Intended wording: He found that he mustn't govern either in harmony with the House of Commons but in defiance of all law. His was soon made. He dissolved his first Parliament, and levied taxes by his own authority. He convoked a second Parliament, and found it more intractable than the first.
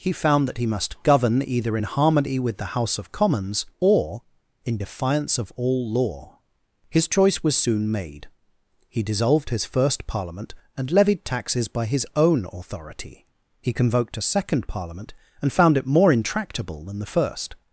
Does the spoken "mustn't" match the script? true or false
false